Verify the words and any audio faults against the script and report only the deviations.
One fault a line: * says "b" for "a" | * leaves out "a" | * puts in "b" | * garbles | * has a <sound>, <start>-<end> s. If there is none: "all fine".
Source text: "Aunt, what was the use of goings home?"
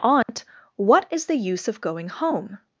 * has a dropout, 0.2-0.3 s
* says "is" for "was"
* says "going" for "goings"